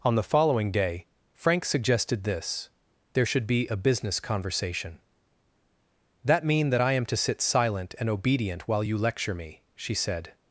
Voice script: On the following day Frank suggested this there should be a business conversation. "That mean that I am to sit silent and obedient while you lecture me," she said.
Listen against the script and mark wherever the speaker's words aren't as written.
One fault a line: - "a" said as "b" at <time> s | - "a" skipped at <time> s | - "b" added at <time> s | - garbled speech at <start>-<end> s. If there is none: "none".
none